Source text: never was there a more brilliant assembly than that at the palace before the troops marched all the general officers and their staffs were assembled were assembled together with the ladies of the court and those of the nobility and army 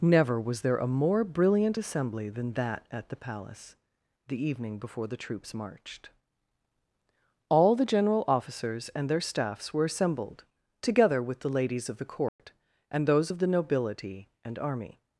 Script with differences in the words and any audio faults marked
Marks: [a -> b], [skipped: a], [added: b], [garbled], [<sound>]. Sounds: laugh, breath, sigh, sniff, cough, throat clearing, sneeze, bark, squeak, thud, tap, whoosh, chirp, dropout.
never was there a more brilliant assembly than that at the palace [added: the evening] before the troops marched all the general officers and their staffs were assembled [skipped: were assembled] together with the ladies of the court [dropout] and those of the nobility and army